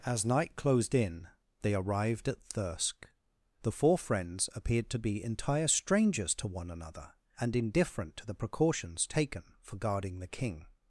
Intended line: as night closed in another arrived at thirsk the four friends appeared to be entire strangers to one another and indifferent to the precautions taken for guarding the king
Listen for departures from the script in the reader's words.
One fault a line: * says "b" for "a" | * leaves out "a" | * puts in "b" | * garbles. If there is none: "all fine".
* says "they" for "another"